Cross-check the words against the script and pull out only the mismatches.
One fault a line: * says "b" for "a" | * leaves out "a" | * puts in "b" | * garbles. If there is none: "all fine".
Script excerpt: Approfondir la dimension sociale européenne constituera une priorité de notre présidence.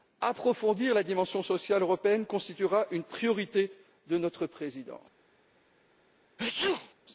all fine